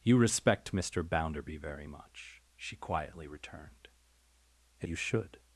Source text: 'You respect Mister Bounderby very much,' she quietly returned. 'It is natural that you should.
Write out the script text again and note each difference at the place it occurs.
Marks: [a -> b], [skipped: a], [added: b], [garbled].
'You respect Mister Bounderby very much,' she quietly returned. 'It [skipped: is natural that] you should.